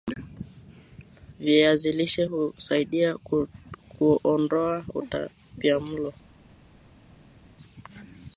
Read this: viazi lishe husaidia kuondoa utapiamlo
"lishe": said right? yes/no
yes